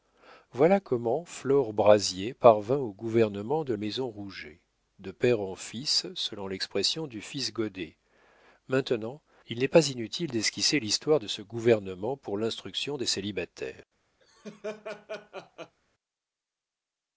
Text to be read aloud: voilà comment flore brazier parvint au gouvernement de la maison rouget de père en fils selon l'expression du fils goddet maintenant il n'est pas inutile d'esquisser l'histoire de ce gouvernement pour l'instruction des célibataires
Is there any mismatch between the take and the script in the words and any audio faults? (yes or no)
yes